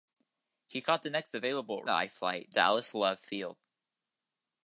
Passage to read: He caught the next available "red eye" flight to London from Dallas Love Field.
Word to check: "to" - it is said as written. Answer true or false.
false